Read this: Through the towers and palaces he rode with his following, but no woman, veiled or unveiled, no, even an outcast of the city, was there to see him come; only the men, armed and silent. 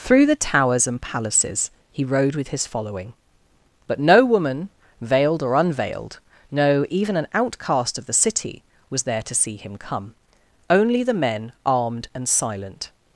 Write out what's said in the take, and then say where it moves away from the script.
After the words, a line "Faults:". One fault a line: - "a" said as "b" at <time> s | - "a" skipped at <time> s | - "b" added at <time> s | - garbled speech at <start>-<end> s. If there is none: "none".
Through the towers and palaces he rode with his following, but no woman, veiled or unveiled, no, even an outcast of the city, was there to see him come; only the men, armed and silent.
Faults:
none